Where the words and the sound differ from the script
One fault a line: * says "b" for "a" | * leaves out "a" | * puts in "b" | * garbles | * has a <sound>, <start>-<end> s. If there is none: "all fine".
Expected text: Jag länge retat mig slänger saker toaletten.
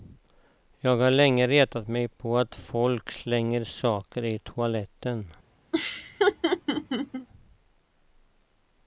* puts in "har"
* puts in "på att folk"
* puts in "i"
* has a laugh, 5.7-7.3 s